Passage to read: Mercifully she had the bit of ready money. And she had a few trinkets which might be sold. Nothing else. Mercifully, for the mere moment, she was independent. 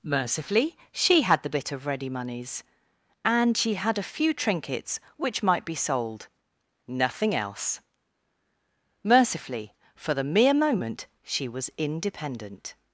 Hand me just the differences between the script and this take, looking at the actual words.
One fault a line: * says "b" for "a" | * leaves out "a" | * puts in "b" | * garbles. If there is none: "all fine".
* says "moneys" for "money"